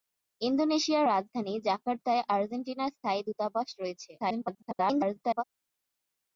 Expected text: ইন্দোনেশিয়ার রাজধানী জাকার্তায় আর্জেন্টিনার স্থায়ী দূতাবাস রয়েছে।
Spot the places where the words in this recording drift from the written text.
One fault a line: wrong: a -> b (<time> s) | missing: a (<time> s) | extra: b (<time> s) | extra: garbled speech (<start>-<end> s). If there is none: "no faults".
extra: garbled speech (4.2-5.4 s)